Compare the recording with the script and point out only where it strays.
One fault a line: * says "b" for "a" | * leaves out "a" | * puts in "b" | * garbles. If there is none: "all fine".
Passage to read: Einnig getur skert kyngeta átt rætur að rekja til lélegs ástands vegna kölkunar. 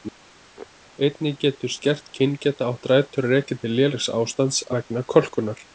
all fine